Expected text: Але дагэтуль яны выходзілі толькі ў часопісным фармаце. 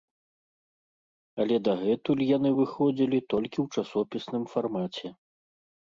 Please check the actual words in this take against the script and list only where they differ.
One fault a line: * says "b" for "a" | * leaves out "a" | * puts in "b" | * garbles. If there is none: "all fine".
all fine